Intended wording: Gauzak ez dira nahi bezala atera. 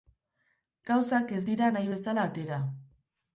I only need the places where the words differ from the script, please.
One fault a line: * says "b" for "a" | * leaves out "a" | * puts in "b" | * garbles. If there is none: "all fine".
all fine